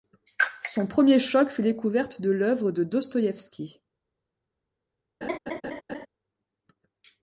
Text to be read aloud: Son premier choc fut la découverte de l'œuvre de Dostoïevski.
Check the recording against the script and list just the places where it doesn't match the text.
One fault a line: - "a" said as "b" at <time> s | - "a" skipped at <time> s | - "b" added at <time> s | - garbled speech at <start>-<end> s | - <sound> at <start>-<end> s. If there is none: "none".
- "la" skipped at 1.6 s
- laugh at 5.2-6.1 s